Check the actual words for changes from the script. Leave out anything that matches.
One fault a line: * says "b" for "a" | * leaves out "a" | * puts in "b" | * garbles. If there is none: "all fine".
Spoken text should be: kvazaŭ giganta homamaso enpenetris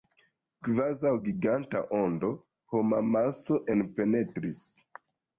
* puts in "ondo"